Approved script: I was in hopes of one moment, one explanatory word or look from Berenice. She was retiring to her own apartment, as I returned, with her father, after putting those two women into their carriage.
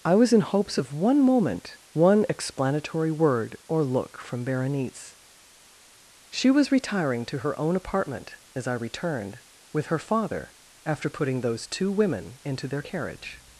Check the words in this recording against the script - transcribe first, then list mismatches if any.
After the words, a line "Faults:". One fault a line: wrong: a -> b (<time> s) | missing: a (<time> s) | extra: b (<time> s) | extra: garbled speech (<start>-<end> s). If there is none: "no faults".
I was in hopes of one moment, one explanatory word or look from Berenice. She was retiring to her own apartment, as I returned, with her father, after putting those two women into their carriage.
Faults:
no faults